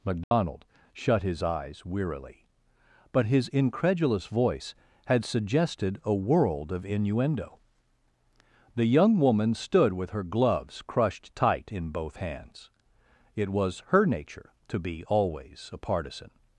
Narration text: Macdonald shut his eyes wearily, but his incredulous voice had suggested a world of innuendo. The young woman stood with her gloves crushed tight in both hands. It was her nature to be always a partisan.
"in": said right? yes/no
yes